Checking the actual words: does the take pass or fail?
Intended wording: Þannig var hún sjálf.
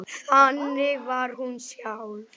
pass